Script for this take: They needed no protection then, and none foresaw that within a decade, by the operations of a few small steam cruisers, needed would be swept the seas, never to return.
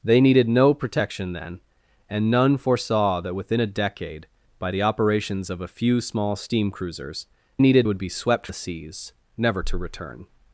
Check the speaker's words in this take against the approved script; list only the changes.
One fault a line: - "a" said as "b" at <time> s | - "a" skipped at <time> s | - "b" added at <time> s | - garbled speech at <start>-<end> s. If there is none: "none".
none